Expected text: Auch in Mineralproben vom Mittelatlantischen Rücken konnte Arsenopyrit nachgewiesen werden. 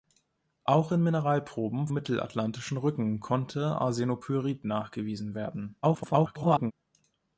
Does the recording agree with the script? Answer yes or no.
no